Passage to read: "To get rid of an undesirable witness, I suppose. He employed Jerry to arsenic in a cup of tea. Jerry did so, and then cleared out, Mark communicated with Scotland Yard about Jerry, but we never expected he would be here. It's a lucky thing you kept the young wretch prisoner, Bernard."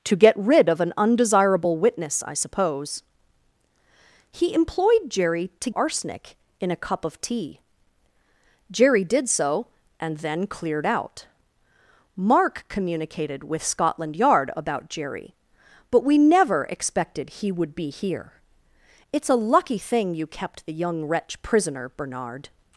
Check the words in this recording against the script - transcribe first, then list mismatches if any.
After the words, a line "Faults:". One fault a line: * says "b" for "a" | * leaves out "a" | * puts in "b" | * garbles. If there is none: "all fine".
"To get rid of an undesirable witness, I suppose. He employed Jerry to arsenic in a cup of tea. Jerry did so, and then cleared out, Mark communicated with Scotland Yard about Jerry, but we never expected he would be here. It's a lucky thing you kept the young wretch prisoner, Bernard."
Faults:
all fine